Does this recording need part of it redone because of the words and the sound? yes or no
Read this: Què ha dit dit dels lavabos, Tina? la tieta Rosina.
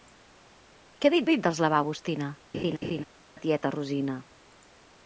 yes